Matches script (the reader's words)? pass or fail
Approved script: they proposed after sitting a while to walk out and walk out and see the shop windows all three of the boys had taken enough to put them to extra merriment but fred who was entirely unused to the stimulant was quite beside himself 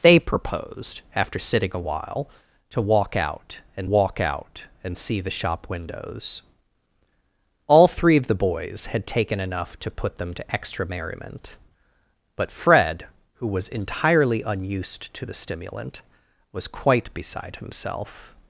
pass